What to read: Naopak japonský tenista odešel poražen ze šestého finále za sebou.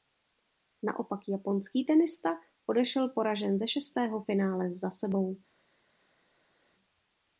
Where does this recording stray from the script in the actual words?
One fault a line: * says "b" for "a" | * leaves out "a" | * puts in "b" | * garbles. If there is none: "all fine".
all fine